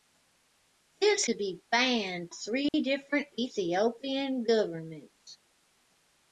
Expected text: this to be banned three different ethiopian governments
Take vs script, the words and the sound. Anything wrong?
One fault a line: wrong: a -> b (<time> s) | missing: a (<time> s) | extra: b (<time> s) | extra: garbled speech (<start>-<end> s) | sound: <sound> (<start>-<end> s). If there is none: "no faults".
sound: dropout (2.7-2.7 s)